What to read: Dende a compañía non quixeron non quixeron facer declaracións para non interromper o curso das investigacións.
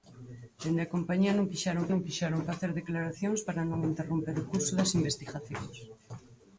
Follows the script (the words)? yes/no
yes